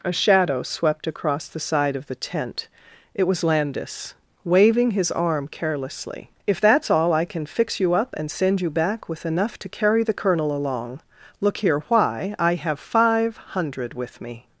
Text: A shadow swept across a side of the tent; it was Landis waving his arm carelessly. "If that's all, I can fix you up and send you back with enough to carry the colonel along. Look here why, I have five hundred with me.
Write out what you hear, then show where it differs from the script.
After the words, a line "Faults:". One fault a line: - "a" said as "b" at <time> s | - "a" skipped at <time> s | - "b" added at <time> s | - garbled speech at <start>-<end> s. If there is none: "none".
A shadow swept across the side of the tent; it was Landis waving his arm carelessly. "If that's all, I can fix you up and send you back with enough to carry the colonel along. Look here why, I have five hundred with me.
Faults:
- "a" said as "the" at 1.5 s